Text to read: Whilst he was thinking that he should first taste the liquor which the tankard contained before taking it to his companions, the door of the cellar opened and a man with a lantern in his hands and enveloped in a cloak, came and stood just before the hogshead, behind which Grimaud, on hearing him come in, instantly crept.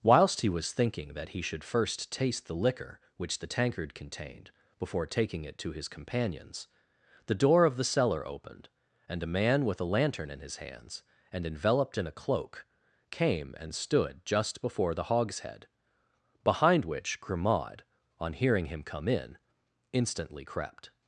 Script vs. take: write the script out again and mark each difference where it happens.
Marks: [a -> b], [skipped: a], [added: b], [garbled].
Whilst he was thinking that he should first taste the liquor which the tankard contained before taking it to his companions, the door of the cellar opened and a man with a lantern in his hands and enveloped in a cloak, came and stood just before the hogshead, behind which Grimaud, on hearing him come in, instantly crept.